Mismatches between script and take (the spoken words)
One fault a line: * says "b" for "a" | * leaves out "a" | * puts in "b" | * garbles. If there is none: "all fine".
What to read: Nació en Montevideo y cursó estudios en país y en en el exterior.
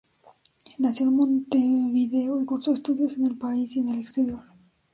* puts in "el"
* leaves out "en"